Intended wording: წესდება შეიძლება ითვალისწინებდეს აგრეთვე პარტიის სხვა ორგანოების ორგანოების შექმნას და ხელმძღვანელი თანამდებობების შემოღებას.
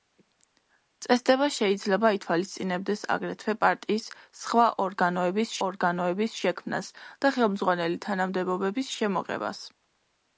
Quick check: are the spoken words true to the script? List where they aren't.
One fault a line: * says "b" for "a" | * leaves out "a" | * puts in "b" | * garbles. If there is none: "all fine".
all fine